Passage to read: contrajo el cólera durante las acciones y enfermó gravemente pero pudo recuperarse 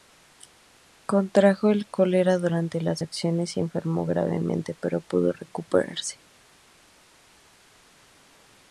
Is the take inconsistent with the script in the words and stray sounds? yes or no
no